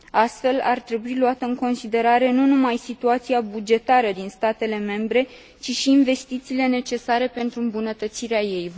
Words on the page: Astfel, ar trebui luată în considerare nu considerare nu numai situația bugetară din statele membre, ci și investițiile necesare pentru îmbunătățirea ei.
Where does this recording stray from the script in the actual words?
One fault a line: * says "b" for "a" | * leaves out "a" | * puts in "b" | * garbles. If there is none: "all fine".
* leaves out "considerare nu"